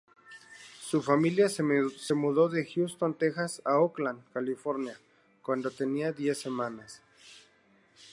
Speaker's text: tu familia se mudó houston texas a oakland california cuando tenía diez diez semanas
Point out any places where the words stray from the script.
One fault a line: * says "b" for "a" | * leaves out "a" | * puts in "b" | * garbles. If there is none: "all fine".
* says "su" for "tu"
* puts in "de"
* leaves out "diez"